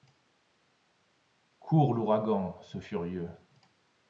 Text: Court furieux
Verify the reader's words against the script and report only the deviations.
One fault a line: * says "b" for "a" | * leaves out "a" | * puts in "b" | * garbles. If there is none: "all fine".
* puts in "l'ouragan ce"